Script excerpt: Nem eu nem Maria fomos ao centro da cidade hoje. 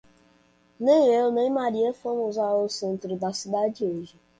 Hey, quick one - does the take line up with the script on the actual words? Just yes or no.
yes